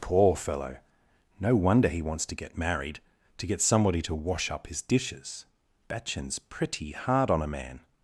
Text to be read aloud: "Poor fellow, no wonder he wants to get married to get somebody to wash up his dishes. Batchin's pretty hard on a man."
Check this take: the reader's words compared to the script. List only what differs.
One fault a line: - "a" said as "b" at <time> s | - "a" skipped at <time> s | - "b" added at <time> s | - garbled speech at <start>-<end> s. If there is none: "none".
none